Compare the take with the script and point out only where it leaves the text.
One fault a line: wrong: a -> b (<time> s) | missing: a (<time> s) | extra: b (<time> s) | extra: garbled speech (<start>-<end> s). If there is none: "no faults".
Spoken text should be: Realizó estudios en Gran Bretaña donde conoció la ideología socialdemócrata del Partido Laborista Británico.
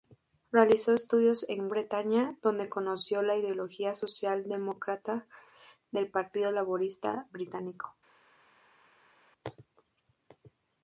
missing: Gran (1.7 s)